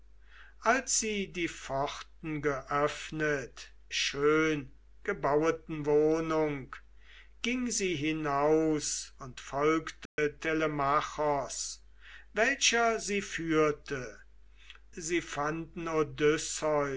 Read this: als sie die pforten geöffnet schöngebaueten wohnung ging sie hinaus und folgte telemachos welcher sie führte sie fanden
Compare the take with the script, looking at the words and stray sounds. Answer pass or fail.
fail